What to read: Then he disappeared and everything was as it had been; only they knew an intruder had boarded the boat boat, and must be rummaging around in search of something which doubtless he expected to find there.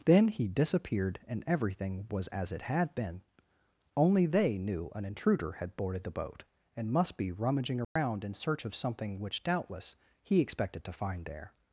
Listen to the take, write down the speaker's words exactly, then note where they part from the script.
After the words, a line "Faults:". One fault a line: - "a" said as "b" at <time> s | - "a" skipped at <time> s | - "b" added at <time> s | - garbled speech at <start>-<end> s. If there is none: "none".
Then he disappeared and everything was as it had been; only they knew an intruder had boarded the boat, and must be rummaging around in search of something which doubtless he expected to find there.
Faults:
- "boat" skipped at 6.4 s